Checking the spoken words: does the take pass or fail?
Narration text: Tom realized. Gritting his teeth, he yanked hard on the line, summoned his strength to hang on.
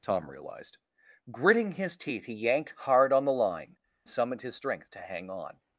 pass